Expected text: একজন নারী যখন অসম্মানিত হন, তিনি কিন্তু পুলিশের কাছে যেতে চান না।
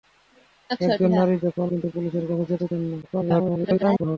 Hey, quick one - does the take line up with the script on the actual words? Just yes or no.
no